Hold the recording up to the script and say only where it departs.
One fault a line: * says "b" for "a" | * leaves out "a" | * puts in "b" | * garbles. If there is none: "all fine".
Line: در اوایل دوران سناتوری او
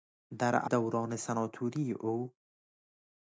* leaves out "اوایل"